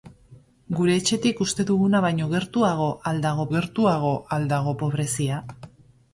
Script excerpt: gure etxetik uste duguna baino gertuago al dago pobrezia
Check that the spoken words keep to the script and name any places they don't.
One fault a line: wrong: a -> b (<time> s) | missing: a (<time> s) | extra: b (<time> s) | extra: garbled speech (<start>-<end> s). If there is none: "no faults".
extra: gertuago al dago (3.5 s)